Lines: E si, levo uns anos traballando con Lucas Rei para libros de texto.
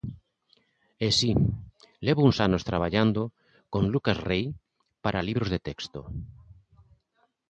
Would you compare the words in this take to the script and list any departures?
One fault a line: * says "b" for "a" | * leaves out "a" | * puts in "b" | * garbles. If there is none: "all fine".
all fine